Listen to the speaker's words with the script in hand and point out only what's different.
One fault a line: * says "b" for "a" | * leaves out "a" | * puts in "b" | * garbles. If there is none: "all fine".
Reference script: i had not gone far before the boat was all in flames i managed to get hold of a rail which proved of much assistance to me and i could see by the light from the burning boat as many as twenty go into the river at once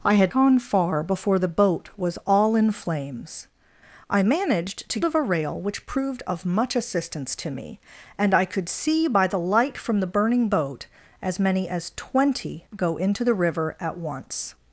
* leaves out "not"
* leaves out "get hold"